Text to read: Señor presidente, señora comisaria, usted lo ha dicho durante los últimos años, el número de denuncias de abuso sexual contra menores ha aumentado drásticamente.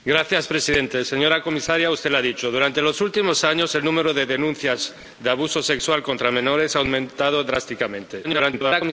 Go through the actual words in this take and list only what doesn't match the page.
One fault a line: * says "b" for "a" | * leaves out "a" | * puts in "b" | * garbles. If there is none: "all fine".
* garbles